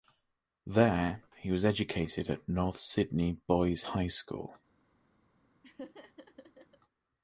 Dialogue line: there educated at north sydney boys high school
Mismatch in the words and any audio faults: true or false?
true